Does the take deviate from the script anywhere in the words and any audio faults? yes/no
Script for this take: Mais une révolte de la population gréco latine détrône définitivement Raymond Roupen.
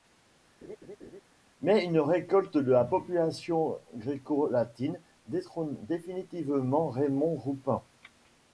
yes